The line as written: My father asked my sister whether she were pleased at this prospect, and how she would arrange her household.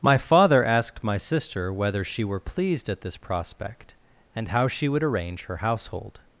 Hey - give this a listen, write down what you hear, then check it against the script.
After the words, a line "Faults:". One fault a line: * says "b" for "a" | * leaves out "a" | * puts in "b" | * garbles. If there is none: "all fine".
My father asked my sister whether she were pleased at this prospect, and how she would arrange her household.
Faults:
all fine